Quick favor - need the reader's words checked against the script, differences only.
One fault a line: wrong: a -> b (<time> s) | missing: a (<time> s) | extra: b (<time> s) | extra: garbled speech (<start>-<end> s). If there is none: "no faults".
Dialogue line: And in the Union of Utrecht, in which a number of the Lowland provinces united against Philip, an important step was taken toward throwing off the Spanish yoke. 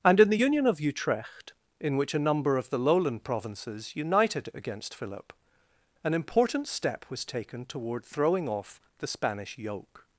no faults